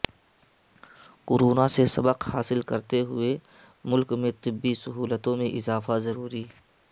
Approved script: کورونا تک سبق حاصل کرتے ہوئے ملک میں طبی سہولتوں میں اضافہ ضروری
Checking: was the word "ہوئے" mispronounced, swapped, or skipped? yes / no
no